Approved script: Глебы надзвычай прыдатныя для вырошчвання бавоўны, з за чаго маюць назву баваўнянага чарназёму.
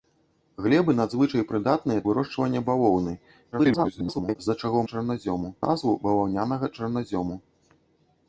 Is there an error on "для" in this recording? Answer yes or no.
yes